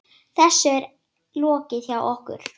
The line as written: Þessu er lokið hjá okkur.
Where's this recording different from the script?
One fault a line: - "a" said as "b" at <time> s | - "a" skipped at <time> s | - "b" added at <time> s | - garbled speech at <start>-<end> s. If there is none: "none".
none